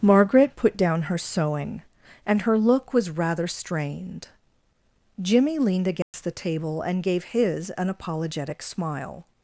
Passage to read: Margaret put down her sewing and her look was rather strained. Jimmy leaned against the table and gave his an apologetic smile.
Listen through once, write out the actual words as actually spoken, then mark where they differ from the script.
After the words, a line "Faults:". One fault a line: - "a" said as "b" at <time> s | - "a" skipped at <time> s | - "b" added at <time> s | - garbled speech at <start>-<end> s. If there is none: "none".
Margaret put down her sewing and her look was rather strained. Jimmy leaned against the table and gave his an apologetic smile.
Faults:
none